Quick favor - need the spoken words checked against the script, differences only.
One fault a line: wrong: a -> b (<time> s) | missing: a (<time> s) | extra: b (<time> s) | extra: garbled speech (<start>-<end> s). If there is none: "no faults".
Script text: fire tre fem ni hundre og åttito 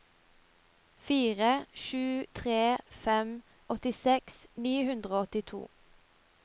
extra: sju (1.8 s)
extra: åttiseks (3.7 s)